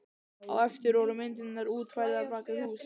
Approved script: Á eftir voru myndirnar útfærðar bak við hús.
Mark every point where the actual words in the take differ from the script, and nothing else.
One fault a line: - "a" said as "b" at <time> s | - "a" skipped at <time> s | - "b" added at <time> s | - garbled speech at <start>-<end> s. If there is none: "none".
none